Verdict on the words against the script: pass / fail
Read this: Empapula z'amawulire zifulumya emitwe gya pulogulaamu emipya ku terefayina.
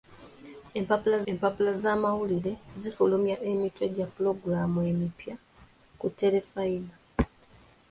fail